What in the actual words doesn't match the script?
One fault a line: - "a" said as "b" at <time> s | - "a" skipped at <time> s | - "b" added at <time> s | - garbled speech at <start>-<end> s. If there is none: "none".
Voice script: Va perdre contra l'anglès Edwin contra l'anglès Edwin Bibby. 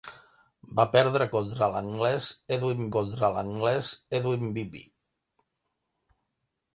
none